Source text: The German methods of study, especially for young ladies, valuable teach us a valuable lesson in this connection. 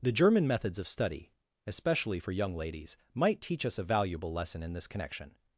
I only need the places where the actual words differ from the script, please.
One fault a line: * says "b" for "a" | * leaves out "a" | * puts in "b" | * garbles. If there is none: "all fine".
* says "might" for "valuable"